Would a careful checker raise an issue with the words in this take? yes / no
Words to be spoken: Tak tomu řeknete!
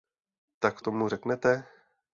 no